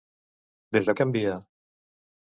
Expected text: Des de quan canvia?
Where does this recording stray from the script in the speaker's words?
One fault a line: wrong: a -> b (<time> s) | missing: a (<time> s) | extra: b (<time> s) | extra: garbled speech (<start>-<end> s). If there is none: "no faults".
missing: quan (0.9 s)